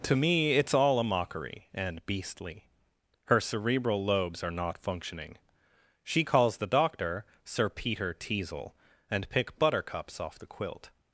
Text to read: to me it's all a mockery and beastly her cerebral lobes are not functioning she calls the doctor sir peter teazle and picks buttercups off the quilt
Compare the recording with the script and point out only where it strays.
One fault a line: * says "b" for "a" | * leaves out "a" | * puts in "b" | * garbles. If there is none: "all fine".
* says "pick" for "picks"